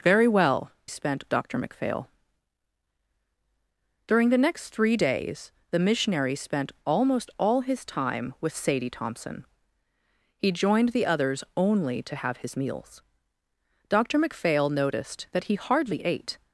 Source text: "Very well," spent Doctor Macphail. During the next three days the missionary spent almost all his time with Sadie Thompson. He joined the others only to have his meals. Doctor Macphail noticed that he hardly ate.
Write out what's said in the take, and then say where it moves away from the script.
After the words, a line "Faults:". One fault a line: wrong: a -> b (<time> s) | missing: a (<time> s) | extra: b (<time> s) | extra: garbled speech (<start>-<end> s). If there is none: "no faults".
"Very well," spent Doctor Macphail. During the next three days the missionary spent almost all his time with Sadie Thompson. He joined the others only to have his meals. Doctor Macphail noticed that he hardly ate.
Faults:
no faults